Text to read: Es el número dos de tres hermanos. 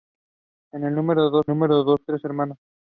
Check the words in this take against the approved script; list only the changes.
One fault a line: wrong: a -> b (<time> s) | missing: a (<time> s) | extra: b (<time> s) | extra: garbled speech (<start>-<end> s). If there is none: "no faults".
extra: número dos (1.5 s)